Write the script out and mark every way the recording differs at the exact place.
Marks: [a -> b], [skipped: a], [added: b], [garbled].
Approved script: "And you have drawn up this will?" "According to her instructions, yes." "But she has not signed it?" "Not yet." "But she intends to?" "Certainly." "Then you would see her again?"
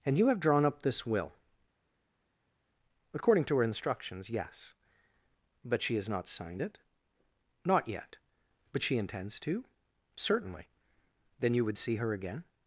"And you have drawn up this will?" "According to her instructions, yes." "But she has not signed it?" "Not yet." "But she intends to?" "Certainly." "Then you would see her again?"